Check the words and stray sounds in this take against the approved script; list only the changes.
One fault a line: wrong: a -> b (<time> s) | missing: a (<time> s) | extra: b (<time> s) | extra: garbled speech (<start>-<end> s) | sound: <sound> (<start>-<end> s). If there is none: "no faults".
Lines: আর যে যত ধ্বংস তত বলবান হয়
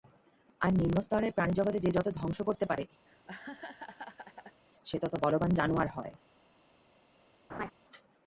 extra: নিম্নস্তরের প্রাণিজগতে (0.7 s)
extra: করতে পারে সে (2.4 s)
sound: laugh (3.1-4.6 s)
extra: জানোয়ার (5.5 s)
sound: laugh (7.5-7.7 s)